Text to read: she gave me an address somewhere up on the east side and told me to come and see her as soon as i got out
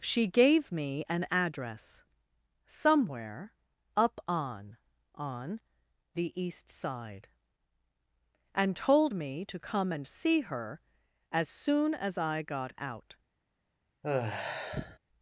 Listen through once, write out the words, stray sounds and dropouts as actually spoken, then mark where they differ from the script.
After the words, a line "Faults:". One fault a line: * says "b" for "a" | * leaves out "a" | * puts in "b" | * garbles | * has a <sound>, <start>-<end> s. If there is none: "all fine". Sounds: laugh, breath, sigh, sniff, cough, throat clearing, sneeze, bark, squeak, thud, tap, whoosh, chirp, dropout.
she gave me an address somewhere up on on the east side and told me to come and see her as soon as i got out
Faults:
* puts in "on"
* has a sigh, 14.0-15.0 s